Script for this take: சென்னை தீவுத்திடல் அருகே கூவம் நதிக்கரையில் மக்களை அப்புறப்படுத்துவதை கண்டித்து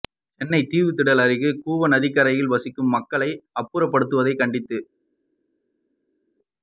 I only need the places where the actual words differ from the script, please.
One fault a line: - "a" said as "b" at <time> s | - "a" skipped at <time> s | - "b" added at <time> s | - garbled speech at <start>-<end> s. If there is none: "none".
- "வசிக்கும்" added at 2.5 s